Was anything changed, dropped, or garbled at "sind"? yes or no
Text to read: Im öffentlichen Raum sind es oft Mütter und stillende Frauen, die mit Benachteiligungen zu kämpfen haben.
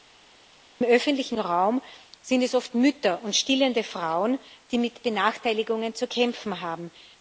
no